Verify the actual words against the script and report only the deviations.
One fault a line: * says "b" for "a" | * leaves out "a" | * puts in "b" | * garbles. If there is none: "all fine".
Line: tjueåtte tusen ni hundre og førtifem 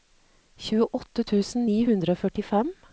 all fine